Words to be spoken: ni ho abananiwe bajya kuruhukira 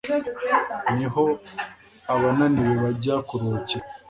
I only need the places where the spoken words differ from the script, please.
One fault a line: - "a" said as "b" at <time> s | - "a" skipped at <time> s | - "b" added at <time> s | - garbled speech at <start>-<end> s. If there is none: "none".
none